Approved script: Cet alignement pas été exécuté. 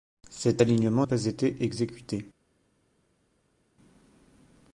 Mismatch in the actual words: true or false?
false